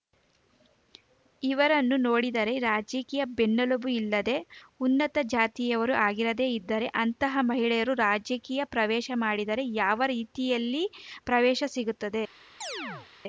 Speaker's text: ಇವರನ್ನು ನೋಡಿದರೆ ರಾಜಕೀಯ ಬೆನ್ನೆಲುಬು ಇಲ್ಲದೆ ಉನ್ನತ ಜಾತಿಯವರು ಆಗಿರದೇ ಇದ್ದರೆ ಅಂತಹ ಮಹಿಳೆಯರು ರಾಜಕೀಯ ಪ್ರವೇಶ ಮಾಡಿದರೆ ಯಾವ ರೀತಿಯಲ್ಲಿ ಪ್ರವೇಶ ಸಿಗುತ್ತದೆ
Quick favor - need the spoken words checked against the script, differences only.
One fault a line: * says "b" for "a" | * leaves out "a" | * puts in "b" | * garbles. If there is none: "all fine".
all fine